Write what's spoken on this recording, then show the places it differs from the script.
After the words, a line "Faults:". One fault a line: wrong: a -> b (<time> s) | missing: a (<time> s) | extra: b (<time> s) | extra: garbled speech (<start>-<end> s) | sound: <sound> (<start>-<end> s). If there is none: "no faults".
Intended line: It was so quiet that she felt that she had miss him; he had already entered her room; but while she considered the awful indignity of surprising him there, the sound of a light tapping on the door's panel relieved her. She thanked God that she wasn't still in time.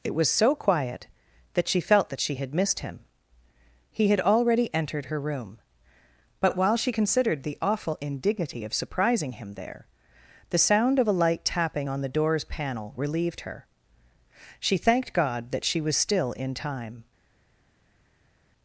It was so quiet that she felt that she had missed him; he had already entered her room; but while she considered the awful indignity of surprising him there, the sound of a light tapping on the door's panel relieved her. She thanked God that she was still in time.
Faults:
wrong: miss -> missed (2.5 s)
wrong: wasn't -> was (15.8 s)